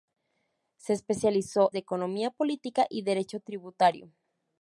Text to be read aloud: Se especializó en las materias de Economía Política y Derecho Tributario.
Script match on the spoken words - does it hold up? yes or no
no